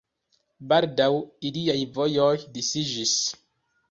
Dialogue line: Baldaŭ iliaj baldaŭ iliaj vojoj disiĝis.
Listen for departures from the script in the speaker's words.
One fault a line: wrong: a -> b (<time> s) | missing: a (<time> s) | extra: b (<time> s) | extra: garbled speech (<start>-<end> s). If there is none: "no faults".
missing: baldaŭ iliaj (1.8 s)